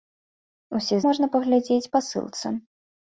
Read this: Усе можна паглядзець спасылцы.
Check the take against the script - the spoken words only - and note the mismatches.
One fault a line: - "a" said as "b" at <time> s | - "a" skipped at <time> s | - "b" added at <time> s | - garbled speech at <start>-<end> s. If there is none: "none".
none